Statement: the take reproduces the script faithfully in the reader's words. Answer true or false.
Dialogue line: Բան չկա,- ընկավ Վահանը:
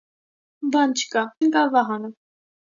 true